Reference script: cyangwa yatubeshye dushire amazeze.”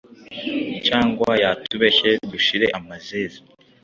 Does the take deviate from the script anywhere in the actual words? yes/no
no